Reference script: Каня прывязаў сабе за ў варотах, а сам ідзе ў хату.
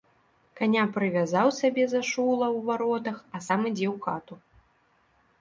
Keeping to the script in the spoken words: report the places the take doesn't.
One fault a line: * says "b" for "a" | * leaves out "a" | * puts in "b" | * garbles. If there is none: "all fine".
* puts in "шула"